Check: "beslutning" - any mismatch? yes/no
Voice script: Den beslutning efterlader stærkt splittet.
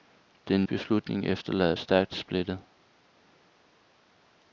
no